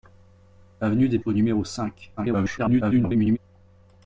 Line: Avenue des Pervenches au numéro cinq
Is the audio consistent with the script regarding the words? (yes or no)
no